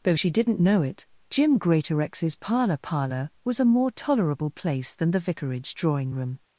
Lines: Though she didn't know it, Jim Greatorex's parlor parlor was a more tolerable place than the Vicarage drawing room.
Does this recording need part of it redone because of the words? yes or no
no